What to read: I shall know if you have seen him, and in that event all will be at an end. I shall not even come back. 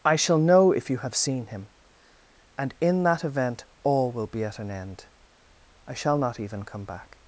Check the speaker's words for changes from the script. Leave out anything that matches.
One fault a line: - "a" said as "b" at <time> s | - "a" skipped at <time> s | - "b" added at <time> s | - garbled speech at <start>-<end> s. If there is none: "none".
none